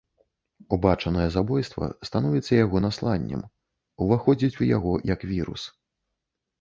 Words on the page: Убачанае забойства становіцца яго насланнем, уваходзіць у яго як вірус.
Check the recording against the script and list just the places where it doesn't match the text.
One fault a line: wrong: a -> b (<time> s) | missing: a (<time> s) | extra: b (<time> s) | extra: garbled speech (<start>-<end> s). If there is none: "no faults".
no faults